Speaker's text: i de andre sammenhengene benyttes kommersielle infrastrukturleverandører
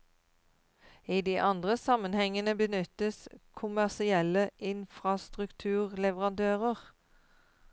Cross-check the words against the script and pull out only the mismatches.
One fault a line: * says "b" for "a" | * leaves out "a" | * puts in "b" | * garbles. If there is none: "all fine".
all fine